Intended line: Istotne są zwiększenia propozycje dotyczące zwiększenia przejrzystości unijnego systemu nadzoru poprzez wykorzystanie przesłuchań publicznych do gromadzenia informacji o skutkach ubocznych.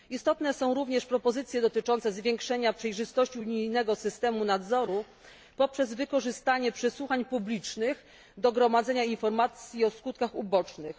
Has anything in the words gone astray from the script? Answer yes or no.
yes